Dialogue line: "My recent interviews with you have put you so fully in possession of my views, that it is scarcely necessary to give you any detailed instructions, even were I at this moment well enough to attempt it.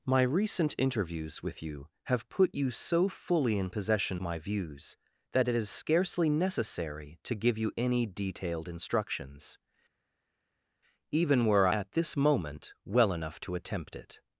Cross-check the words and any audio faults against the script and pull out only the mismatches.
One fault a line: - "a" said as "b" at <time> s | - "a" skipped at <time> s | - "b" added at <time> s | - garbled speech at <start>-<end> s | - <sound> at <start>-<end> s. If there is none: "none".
- "of" skipped at 4.2 s
- "I" skipped at 11.7 s